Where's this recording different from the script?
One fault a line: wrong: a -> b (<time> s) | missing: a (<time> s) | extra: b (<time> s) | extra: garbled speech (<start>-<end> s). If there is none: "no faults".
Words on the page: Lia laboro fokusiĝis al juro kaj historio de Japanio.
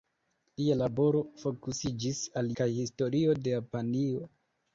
missing: juro (2.5 s)